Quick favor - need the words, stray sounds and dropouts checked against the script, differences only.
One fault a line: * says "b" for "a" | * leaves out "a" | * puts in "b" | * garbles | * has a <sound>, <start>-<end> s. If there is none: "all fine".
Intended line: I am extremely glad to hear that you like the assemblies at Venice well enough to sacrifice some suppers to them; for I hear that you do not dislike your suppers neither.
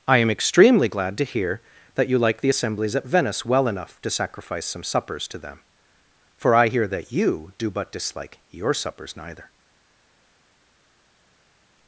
* says "but" for "not"